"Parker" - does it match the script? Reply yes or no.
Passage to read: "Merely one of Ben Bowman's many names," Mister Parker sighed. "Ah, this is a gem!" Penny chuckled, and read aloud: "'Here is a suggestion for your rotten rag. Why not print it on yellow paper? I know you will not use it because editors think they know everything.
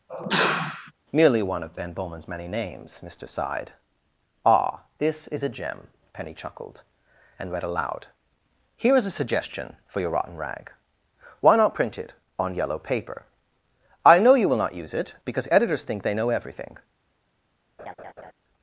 no